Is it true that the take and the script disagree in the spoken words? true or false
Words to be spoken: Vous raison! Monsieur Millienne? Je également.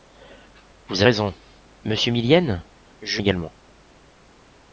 false